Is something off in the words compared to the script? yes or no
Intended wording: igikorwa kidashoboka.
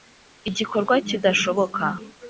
no